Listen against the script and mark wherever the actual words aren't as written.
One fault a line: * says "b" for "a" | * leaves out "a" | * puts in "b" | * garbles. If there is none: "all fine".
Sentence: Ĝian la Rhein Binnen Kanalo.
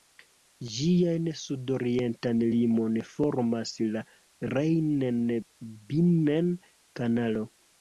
* puts in "sudorientan limon formas"